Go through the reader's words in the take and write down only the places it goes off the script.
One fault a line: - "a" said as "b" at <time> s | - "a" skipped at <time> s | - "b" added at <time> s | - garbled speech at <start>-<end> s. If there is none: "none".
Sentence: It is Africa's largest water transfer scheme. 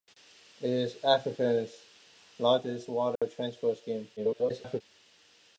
- garbled speech at 4.2-4.8 s